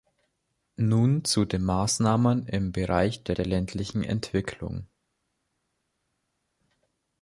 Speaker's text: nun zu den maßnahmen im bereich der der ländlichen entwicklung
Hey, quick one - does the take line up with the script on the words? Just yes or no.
yes